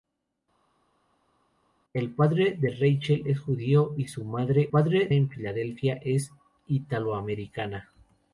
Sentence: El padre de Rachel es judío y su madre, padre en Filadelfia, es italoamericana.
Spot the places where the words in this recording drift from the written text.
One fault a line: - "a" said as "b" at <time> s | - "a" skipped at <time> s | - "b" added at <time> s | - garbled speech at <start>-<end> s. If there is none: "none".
none